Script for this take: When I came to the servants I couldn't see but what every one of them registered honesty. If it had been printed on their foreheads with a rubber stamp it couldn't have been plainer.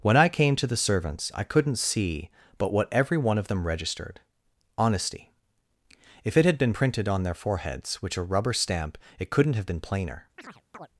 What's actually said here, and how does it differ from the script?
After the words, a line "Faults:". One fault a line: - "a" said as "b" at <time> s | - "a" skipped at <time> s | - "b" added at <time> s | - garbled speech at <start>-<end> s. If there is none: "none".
When I came to the servants I couldn't see but what every one of them registered honesty. If it had been printed on their foreheads which a rubber stamp it couldn't have been plainer.
Faults:
- "with" said as "which" at 8.0 s